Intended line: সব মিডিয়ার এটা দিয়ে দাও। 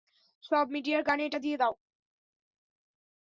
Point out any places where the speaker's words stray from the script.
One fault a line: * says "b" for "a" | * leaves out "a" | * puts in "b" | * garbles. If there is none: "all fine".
* puts in "কানে"